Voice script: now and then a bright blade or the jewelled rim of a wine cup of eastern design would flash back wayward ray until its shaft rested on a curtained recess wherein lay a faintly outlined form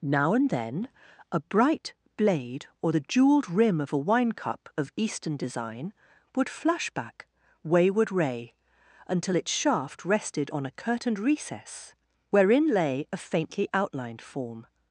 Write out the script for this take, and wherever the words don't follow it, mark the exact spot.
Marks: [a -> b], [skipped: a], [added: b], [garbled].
now and then a bright blade or the jewelled rim of a wine cup of eastern design would flash back wayward ray until its shaft rested on a curtained recess wherein lay a faintly outlined form